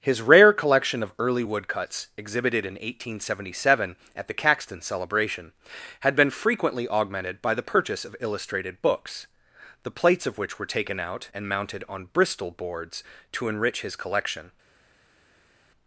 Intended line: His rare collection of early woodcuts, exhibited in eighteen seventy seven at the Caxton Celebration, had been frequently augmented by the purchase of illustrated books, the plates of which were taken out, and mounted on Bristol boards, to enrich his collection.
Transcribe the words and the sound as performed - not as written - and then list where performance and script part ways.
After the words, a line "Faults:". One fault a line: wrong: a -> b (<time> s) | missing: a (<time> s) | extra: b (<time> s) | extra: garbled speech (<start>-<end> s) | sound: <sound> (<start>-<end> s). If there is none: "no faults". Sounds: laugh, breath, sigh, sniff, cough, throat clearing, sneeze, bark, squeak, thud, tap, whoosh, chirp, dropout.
His rare collection of early woodcuts, exhibited in eighteen seventy seven at the Caxton Celebration, had been frequently augmented by the purchase of illustrated books, the plates of which were taken out, and mounted on Bristol boards, to enrich his collection.
Faults:
no faults